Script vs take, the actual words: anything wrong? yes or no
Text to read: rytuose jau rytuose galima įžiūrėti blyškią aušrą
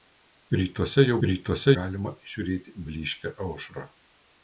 no